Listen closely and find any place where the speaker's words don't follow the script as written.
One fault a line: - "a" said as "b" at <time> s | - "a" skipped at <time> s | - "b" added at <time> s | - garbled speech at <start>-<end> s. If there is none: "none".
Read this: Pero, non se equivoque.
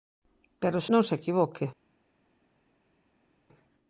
none